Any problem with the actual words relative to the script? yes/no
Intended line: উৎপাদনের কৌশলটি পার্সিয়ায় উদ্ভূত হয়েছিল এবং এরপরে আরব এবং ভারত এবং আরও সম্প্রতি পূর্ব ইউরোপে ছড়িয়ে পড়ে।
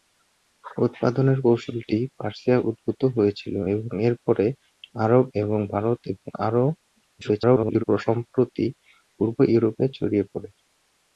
yes